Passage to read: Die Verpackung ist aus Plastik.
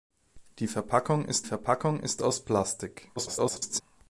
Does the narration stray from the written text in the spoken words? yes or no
yes